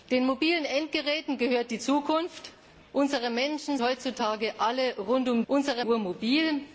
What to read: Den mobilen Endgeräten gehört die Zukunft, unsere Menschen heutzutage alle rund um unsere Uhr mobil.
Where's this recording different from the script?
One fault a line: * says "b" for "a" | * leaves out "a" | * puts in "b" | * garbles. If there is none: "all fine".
all fine